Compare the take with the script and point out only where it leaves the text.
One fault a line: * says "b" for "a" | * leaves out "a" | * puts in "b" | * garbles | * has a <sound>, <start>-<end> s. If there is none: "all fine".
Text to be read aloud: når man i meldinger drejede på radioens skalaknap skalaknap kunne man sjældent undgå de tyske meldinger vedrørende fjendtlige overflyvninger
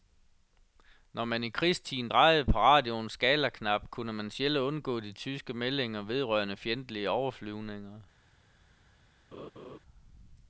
* says "krigstiden" for "meldinger"
* leaves out "skalaknap"
* has a laugh, 9.3-9.8 s